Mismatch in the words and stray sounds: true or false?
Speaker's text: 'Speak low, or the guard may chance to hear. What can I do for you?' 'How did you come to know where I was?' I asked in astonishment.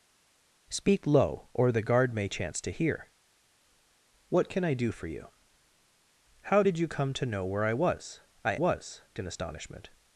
true